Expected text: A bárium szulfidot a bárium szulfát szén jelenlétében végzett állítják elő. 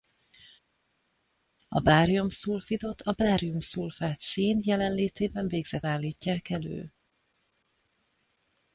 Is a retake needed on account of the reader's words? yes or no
no